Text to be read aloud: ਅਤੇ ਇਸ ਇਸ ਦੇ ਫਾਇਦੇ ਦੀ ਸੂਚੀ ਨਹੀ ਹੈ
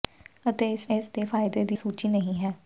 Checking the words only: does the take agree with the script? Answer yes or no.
yes